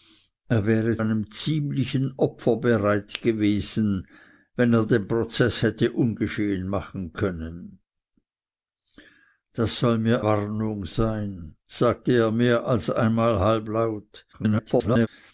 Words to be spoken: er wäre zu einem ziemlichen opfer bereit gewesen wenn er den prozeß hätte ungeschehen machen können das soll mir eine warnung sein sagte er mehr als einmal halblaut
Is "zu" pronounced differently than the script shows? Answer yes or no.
yes